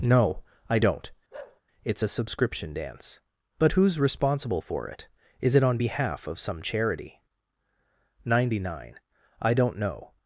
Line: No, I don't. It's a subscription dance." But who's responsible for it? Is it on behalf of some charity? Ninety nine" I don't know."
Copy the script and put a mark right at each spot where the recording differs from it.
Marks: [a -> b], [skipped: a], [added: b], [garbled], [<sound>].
No, I don't. [bark] It's a subscription dance." But who's responsible for it? Is it on behalf of some charity? Ninety nine" I don't know."